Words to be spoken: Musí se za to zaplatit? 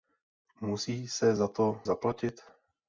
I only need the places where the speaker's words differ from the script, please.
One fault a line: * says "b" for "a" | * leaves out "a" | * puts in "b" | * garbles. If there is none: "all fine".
all fine